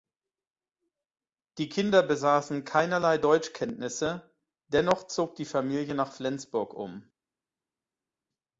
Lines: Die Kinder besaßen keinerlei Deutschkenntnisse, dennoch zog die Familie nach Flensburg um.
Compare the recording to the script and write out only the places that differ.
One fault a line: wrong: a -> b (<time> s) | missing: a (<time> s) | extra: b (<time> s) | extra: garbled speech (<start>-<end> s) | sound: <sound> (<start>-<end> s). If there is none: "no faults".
no faults